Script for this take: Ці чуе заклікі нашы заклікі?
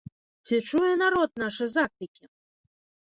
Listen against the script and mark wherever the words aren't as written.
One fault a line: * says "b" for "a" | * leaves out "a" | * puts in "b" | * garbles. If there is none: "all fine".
* says "народ" for "заклікі"